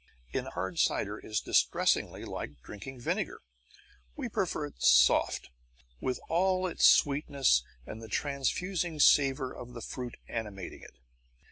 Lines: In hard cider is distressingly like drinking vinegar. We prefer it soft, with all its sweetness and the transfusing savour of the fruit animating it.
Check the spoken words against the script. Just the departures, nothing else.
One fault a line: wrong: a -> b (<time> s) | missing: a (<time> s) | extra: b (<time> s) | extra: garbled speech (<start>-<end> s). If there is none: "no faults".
no faults